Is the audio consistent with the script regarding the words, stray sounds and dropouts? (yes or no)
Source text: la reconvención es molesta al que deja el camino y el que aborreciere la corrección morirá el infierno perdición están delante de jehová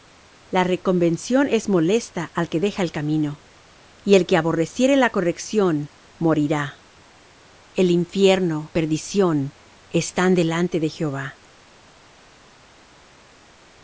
yes